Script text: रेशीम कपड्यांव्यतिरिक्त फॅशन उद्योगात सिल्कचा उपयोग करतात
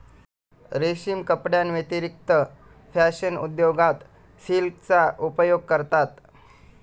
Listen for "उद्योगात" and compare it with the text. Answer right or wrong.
right